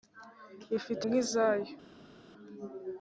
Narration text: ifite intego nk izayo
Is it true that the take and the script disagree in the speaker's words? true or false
true